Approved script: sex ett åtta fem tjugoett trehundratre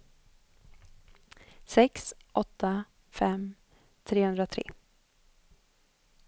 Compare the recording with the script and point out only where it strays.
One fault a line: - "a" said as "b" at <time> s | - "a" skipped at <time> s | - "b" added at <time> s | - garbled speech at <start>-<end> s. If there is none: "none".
- "ett" skipped at 2.1 s
- "tjugoett" skipped at 3.5 s